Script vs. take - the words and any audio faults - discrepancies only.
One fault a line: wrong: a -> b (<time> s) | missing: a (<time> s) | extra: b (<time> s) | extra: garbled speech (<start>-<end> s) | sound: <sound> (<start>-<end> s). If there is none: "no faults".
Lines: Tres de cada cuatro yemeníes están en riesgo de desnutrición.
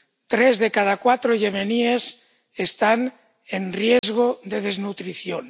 sound: dropout (4.0-4.0 s)